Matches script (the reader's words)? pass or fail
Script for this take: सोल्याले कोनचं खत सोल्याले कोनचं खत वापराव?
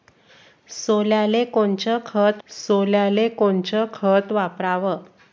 pass